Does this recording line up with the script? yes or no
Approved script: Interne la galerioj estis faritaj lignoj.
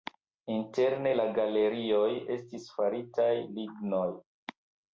yes